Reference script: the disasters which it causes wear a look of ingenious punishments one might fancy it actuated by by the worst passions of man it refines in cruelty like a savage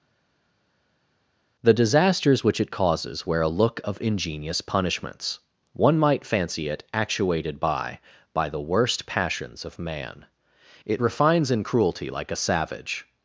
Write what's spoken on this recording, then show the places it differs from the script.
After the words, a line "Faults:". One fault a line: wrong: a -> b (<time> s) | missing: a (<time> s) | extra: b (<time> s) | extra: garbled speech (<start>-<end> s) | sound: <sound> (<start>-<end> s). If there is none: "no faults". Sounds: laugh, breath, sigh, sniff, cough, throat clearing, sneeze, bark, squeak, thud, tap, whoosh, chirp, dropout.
the disasters which it causes wear a look of ingenious punishments one might fancy it actuated by by the worst passions of man it refines in cruelty like a savage
Faults:
no faults